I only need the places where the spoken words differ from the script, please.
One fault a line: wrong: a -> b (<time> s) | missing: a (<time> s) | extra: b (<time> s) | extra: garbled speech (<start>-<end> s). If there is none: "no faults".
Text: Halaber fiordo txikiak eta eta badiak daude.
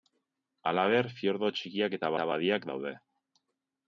no faults